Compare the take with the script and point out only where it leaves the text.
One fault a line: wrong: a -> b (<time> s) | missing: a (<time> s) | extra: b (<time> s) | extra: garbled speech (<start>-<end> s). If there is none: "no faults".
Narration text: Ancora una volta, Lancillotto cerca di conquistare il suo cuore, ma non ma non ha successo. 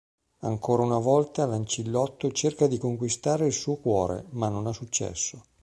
missing: ma non (4.7 s)